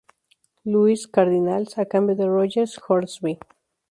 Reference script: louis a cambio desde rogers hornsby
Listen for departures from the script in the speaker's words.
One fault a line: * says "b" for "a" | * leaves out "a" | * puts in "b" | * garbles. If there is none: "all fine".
* puts in "cardinals"
* says "de" for "desde"